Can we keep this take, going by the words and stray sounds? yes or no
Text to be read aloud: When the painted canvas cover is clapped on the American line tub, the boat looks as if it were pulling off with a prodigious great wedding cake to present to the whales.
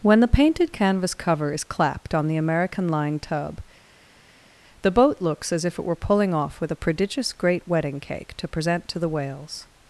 yes